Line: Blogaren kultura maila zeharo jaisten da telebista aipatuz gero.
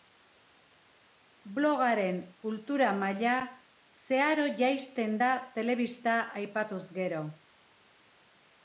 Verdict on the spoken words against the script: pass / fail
pass